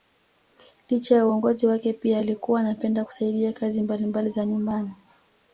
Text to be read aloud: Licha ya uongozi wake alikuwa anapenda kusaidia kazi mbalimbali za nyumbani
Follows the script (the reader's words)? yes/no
no